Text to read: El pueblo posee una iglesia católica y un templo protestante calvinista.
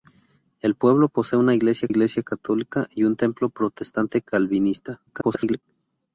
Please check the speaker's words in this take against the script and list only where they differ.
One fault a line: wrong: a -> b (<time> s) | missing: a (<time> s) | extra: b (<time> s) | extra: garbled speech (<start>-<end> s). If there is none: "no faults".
extra: iglesia (1.9 s)
extra: garbled speech (5.1-5.6 s)